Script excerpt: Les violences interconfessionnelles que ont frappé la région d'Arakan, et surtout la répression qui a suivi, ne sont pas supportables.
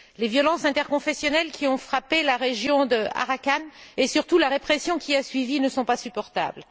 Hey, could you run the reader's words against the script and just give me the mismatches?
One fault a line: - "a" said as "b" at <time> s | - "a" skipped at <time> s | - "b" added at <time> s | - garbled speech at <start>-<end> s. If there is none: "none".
- "que" said as "qui" at 1.5 s